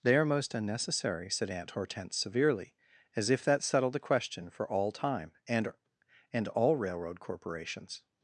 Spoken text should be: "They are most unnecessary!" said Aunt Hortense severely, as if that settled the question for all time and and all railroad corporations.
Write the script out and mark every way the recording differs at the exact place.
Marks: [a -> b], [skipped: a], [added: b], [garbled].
"They are most unnecessary!" said Aunt Hortense severely, as if that settled the question for all time and and all railroad corporations.